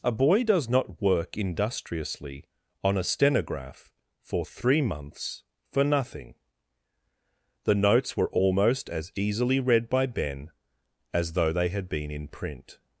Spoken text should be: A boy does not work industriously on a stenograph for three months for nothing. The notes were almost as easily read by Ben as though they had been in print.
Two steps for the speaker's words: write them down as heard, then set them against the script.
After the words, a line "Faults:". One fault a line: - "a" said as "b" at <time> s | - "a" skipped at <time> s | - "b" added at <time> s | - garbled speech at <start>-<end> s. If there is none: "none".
A boy does not work industriously on a stenograph for three months for nothing. The notes were almost as easily read by Ben as though they had been in print.
Faults:
none